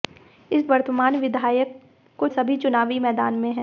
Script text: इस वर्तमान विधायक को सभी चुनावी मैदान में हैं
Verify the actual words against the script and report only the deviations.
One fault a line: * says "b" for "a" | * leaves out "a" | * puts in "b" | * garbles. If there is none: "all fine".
all fine